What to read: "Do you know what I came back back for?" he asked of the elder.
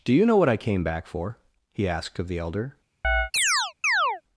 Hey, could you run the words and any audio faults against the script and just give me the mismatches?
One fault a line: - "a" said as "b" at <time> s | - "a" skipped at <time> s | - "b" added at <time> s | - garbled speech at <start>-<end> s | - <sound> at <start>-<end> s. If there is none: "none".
- "back" skipped at 1.1 s
- chirp at 3.0-4.2 s